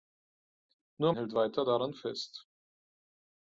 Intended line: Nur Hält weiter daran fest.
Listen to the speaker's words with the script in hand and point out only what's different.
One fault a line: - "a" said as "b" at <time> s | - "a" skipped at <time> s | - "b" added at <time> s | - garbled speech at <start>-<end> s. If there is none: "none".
none